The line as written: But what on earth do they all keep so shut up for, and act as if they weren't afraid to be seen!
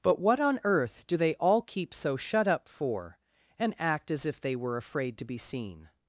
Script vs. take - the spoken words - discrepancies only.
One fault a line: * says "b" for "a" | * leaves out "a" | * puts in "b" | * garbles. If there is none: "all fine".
* says "were" for "weren't"